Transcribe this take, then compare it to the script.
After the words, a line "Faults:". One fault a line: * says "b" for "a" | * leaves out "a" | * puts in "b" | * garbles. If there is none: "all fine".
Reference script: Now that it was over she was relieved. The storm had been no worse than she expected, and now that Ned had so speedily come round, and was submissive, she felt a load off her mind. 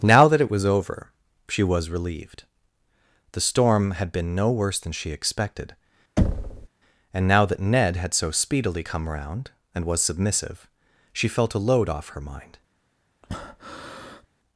Now that it was over she was relieved. The storm had been no worse than she expected, and now that Ned had so speedily come round, and was submissive, she felt a load off her mind.
Faults:
all fine